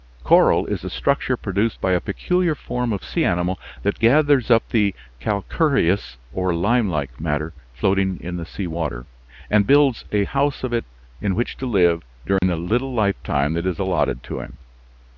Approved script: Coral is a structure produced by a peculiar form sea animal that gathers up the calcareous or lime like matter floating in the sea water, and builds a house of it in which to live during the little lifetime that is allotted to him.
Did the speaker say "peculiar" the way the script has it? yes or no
yes